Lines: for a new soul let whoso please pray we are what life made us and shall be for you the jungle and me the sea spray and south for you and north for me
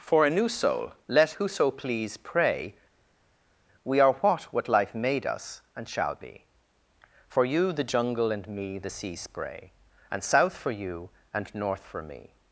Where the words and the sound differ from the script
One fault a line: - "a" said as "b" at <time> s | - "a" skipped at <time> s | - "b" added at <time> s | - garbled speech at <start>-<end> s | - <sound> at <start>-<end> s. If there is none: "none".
- "what" added at 4.4 s